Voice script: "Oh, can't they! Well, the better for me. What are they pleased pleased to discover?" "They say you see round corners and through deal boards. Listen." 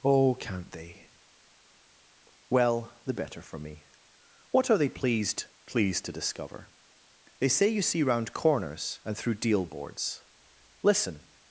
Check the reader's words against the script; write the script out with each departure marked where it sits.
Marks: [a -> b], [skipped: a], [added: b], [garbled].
"Oh, can't they! Well, the better for me. What are they pleased pleased to discover?" "They say you see round corners and through deal boards. Listen."